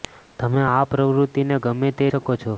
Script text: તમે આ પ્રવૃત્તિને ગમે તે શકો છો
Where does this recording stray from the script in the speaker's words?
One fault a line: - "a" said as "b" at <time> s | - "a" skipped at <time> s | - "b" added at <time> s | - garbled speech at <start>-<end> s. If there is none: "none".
none